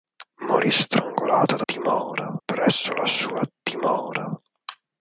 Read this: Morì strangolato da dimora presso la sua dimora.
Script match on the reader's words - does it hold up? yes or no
yes